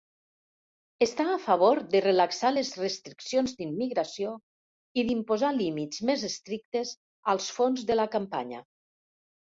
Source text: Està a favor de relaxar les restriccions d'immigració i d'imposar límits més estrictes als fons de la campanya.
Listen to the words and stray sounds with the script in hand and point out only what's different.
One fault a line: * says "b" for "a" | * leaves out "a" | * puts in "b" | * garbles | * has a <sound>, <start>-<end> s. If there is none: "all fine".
all fine